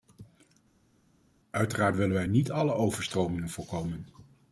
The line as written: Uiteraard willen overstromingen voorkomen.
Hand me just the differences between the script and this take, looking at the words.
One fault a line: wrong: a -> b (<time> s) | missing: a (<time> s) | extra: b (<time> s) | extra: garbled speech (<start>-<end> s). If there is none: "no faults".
extra: wij niet alle (2.1 s)